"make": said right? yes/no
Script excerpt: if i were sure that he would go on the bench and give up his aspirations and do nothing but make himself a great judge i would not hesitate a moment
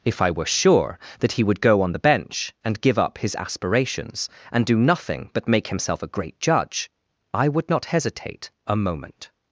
yes